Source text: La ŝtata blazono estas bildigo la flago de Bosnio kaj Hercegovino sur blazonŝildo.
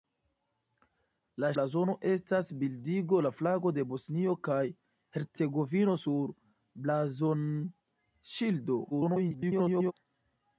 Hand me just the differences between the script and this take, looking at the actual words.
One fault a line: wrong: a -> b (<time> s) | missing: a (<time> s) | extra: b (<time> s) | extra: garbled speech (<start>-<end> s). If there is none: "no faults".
missing: ŝtata (1.5 s)
extra: garbled speech (8.9-9.9 s)